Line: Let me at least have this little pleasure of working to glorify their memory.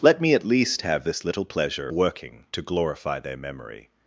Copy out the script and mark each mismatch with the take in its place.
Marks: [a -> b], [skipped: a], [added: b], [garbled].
Let me at least have this little pleasure [skipped: of] working to glorify their memory.